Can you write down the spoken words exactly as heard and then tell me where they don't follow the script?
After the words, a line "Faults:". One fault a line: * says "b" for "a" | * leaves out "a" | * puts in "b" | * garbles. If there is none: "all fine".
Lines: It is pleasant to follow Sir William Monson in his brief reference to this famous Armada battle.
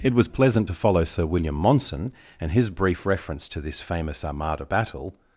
It was pleasant to follow Sir William Monson and his brief reference to this famous Armada battle.
Faults:
* says "was" for "is"
* says "and" for "in"